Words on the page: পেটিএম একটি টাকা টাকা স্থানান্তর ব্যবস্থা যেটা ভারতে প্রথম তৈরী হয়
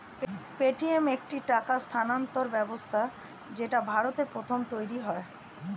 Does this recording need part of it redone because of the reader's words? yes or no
yes